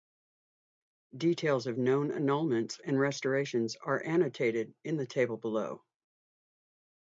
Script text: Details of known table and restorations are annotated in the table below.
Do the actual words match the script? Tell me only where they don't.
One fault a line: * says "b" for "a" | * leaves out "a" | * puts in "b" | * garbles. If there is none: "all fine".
* says "annulments" for "table"